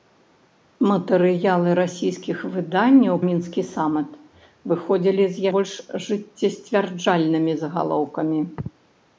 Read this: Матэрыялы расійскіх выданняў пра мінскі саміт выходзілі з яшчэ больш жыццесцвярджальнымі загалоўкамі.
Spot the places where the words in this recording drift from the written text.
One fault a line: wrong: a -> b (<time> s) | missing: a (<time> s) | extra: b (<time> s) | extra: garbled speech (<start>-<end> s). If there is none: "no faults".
missing: пра (3.2 s)
missing: яшчэ (5.5 s)